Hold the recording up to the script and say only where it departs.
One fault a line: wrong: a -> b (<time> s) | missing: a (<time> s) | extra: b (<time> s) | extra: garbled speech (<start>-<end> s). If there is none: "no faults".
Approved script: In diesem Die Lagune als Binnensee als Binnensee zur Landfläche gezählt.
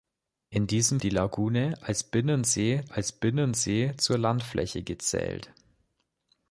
no faults